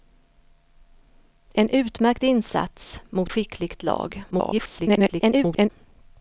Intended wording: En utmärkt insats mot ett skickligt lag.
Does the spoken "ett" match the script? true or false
false